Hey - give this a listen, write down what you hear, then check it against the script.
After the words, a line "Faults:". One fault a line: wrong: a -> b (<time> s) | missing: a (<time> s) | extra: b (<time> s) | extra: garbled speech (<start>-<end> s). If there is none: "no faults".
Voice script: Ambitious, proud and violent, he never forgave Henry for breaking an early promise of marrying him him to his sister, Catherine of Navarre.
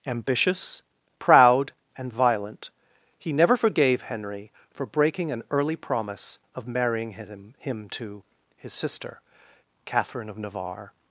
Ambitious, proud and violent, he never forgave Henry for breaking an early promise of marrying him him to his sister, Catherine of Navarre.
Faults:
no faults